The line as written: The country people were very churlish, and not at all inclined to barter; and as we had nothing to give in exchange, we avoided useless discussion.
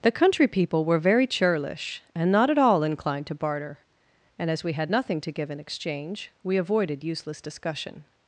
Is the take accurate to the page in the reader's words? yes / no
yes